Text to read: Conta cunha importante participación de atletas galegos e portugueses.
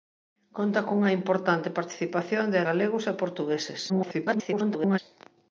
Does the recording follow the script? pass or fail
fail